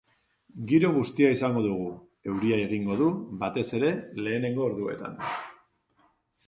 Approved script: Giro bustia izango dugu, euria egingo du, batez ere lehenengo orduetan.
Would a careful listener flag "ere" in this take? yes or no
no